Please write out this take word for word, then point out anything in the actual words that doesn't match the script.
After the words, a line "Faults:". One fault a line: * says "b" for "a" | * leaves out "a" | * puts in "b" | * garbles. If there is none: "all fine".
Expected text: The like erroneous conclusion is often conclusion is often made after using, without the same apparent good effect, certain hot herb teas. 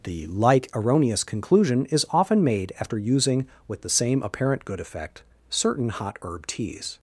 The like erroneous conclusion is often made after using, with the same apparent good effect, certain hot herb teas.
Faults:
* leaves out "conclusion is often"
* says "with" for "without"